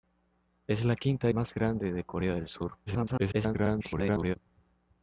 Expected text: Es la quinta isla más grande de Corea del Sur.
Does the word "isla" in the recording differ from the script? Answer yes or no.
yes